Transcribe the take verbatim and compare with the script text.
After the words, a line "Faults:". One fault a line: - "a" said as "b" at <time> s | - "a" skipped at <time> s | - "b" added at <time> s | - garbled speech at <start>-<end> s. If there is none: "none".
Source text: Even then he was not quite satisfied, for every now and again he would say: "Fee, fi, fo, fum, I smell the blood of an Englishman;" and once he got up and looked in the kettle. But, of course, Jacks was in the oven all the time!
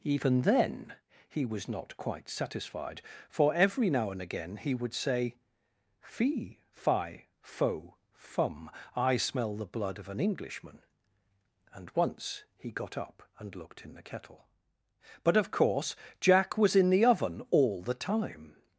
Even then he was not quite satisfied, for every now and again he would say: "Fee, fi, fo, fum, I smell the blood of an Englishman;" and once he got up and looked in the kettle. But, of course, Jack was in the oven all the time!
Faults:
- "Jacks" said as "Jack" at 16.2 s